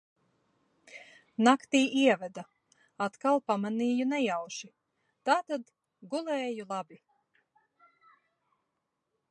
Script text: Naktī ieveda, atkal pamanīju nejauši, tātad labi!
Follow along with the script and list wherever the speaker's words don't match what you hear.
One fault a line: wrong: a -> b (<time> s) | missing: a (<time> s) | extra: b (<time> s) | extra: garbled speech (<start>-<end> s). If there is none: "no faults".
extra: gulēju (6.1 s)